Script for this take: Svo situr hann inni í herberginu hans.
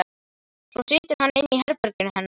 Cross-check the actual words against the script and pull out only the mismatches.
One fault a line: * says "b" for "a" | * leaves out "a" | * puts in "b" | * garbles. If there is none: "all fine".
* says "hennar" for "hans"